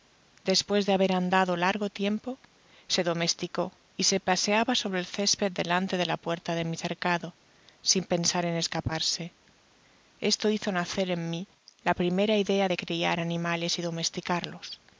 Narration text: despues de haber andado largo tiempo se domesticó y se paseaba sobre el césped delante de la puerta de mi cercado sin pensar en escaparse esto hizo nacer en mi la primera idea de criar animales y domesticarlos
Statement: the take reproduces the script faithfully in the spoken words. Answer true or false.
true